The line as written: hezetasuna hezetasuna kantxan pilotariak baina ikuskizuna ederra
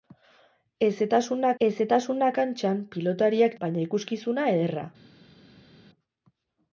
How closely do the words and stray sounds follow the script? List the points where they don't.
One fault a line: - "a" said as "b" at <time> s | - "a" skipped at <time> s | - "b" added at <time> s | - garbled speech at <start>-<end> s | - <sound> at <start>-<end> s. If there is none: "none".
none